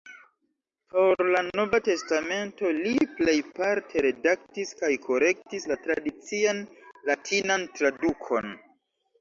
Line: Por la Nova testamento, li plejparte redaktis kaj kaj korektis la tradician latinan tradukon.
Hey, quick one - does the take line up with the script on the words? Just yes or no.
no